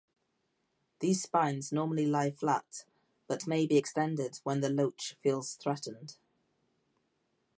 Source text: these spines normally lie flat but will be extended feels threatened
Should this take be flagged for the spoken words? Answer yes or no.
yes